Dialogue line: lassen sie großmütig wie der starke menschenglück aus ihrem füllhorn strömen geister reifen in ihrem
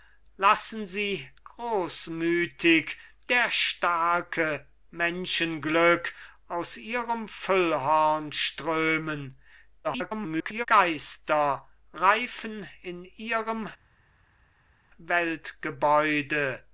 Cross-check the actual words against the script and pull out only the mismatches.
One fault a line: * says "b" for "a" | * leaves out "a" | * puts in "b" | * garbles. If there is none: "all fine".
* leaves out "wie"
* garbles